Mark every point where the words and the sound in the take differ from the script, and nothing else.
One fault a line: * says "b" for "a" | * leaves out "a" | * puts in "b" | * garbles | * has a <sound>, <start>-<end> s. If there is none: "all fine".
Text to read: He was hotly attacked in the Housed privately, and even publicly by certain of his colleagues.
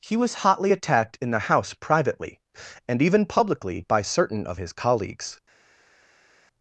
* says "House" for "Housed"